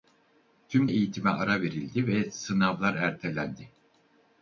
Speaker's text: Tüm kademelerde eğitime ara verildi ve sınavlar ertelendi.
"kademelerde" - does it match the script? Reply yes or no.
no